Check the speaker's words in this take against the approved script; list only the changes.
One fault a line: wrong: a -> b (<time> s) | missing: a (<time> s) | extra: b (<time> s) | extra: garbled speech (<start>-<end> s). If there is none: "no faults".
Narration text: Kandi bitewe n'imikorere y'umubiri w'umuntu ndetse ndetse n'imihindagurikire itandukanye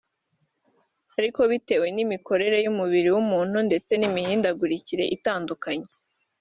wrong: Kandi -> Ariko (1.2 s)
missing: ndetse (3.9 s)